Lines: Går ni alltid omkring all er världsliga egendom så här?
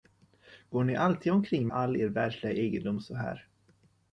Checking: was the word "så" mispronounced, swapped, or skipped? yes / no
no